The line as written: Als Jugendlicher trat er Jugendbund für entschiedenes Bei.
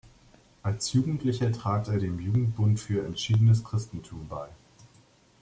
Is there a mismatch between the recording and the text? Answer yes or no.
yes